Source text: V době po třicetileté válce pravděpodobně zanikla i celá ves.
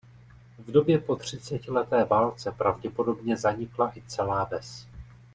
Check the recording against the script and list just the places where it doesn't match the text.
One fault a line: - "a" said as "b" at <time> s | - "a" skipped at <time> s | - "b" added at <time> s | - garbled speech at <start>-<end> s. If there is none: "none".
none